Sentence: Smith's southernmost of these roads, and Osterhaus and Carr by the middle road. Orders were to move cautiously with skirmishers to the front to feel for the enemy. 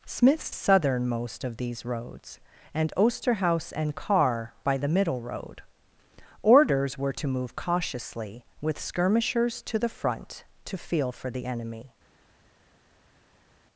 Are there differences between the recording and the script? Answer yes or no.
no